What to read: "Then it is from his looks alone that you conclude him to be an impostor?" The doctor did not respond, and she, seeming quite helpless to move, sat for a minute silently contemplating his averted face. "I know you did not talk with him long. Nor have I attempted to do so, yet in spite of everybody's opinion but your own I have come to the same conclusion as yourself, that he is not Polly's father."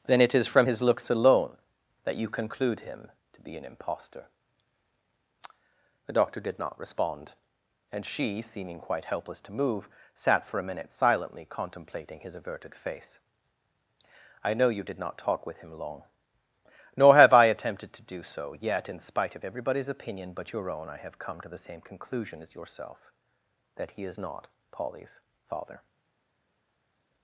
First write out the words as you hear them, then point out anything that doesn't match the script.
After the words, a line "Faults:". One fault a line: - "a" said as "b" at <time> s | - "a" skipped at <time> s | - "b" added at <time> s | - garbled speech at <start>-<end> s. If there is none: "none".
"Then it is from his looks alone that you conclude him to be an impostor?" The doctor did not respond, and she, seeming quite helpless to move, sat for a minute silently contemplating his averted face. "I know you did not talk with him long. Nor have I attempted to do so, yet in spite of everybody's opinion but your own I have come to the same conclusion as yourself, that he is not Polly's father."
Faults:
none